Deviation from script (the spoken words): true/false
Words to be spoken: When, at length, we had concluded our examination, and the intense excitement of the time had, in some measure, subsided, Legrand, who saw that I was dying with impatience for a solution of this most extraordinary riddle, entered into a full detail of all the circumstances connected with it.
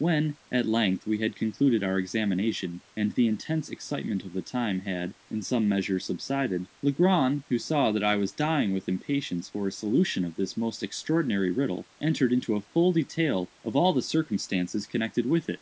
false